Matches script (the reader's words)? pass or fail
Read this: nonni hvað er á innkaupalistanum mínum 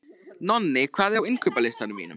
pass